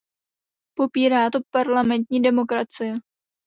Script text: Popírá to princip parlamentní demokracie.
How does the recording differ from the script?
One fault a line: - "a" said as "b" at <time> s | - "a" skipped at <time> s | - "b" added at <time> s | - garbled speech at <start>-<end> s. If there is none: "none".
- "princip" skipped at 1.4 s